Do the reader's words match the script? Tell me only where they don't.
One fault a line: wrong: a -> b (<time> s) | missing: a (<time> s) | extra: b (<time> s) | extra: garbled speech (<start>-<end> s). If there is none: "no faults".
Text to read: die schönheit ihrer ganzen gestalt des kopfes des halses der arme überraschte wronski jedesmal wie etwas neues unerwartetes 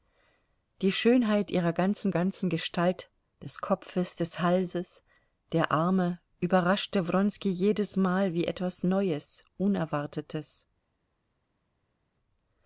extra: ganzen (2.1 s)